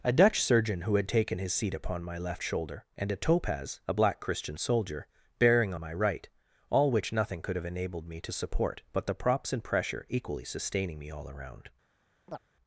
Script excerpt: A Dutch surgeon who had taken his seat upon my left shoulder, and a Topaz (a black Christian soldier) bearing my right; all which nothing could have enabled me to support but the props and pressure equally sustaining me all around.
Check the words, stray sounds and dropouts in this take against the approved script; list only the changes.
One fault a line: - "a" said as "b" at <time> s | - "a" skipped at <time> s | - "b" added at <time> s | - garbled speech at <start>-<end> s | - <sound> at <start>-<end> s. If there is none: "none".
- chirp at 12.3-12.4 s